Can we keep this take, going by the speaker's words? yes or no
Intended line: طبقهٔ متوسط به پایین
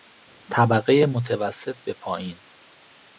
yes